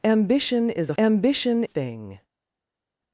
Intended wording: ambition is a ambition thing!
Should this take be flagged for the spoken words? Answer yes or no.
no